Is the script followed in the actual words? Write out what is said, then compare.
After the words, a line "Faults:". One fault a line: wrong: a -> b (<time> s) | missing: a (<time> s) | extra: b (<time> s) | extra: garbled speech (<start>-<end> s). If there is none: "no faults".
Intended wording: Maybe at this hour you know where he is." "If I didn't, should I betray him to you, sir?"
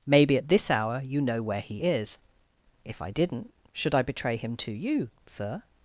Maybe at this hour you know where he is." "If I didn't, should I betray him to you, sir?"
Faults:
no faults